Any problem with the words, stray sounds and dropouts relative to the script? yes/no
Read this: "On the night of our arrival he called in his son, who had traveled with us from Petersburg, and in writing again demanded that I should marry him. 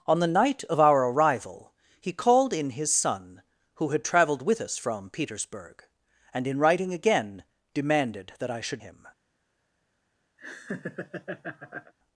yes